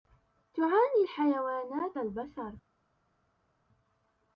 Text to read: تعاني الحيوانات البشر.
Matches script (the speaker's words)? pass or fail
pass